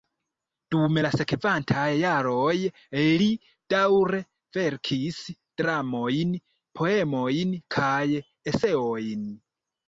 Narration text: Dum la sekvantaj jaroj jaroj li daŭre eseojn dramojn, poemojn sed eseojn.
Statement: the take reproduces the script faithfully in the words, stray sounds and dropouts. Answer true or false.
false